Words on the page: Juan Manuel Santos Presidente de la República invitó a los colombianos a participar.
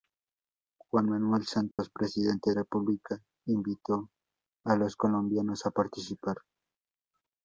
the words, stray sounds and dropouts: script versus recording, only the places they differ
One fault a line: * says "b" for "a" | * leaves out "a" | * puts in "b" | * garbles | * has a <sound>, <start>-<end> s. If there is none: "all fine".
* has a dropout, 1.7-1.8 s
* leaves out "de la"